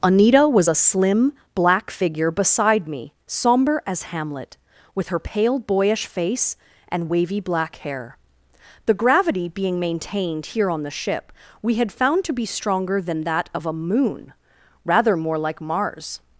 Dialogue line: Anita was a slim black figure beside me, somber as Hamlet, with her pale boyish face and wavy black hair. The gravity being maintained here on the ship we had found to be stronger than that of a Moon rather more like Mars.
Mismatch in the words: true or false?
false